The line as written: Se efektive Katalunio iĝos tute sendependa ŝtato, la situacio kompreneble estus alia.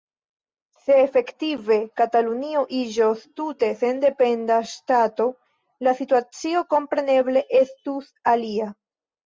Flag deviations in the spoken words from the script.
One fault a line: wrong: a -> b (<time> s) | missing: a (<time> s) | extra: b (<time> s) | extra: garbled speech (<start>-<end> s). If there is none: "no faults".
no faults